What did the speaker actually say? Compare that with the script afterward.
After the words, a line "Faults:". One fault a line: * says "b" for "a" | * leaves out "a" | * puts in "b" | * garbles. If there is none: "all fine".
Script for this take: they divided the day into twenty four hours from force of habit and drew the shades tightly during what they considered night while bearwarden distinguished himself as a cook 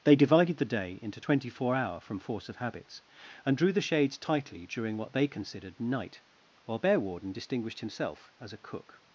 they divided the day into twenty four hour from force of habits and drew the shades tightly during what they considered night while bearwarden distinguished himself as a cook
Faults:
* says "hour" for "hours"
* says "habits" for "habit"